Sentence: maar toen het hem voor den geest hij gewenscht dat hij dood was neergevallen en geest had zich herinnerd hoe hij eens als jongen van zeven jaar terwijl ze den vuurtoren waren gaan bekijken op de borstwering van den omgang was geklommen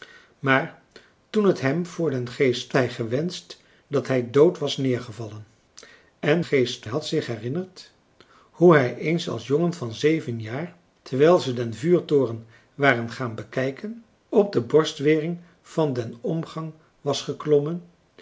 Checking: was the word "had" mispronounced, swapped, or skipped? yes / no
no